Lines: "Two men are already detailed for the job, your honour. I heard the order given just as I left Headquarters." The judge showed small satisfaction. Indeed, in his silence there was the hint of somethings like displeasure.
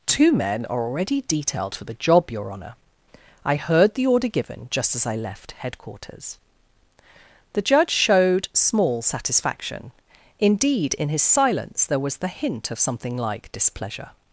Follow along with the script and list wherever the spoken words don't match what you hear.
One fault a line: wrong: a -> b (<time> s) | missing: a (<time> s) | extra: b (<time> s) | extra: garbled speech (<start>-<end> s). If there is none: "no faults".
wrong: somethings -> something (12.8 s)